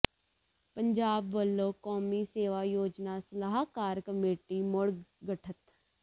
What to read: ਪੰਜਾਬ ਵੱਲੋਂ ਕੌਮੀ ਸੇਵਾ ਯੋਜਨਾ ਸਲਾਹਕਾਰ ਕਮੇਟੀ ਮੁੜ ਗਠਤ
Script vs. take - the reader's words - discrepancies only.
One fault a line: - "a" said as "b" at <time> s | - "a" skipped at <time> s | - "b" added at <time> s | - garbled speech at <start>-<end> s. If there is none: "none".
none